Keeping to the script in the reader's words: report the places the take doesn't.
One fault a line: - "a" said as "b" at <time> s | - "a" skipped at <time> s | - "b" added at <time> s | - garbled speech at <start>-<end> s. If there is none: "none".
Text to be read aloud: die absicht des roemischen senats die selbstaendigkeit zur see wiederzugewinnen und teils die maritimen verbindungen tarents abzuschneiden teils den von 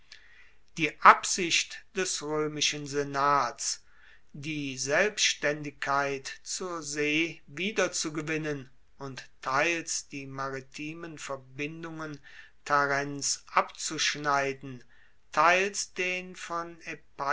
none